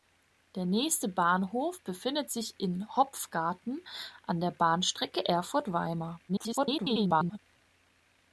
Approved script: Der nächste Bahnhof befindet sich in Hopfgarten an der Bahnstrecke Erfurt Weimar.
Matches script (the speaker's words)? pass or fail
fail